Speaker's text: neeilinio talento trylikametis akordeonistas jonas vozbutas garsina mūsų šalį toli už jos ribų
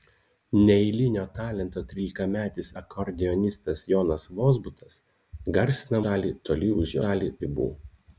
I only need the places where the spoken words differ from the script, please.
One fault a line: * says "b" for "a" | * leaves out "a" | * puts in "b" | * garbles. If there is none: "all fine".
* leaves out "mūsų"
* says "šalį" for "jos"